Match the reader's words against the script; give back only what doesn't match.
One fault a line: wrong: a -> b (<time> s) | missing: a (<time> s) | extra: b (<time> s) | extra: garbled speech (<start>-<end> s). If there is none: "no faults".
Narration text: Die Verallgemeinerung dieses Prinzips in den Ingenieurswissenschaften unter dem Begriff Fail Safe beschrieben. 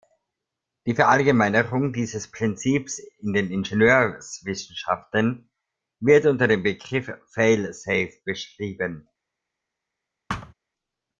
extra: wird (6.0 s)